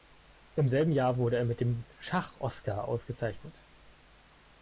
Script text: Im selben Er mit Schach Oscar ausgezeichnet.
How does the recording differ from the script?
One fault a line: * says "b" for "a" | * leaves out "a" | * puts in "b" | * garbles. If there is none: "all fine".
* puts in "Jahr wurde"
* puts in "dem"